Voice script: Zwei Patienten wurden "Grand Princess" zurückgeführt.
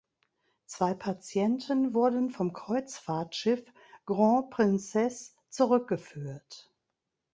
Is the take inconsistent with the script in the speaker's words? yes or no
yes